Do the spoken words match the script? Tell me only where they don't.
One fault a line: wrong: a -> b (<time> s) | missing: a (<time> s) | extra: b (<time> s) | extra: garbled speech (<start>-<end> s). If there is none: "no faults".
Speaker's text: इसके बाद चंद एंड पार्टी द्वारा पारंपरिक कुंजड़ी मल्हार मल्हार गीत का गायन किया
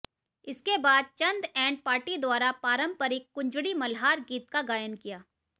missing: मल्हार (4.2 s)